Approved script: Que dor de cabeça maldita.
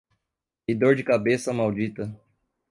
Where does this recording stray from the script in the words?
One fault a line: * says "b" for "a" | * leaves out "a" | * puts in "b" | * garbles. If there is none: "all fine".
all fine